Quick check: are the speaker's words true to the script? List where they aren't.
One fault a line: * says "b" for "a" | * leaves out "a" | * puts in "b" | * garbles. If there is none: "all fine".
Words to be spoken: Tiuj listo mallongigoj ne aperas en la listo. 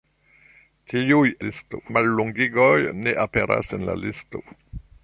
all fine